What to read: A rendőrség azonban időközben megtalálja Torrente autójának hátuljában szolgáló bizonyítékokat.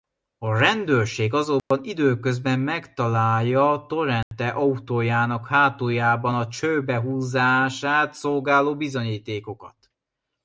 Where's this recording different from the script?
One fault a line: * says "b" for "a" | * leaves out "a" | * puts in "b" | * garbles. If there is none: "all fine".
* puts in "a csőbe húzását"